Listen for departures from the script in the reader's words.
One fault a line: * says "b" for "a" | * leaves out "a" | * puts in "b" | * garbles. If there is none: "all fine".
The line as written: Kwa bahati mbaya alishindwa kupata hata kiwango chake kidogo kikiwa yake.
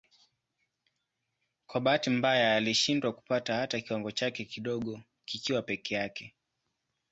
* puts in "peke"